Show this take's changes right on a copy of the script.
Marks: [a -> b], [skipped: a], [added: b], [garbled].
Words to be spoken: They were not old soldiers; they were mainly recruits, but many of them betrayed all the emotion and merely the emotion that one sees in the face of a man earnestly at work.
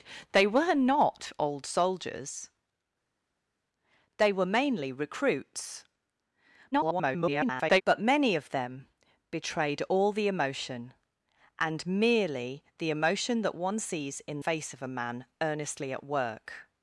They were not old soldiers; they were mainly recruits, [garbled] but many of them betrayed all the emotion and merely the emotion that one sees in [skipped: the] face of a man earnestly at work.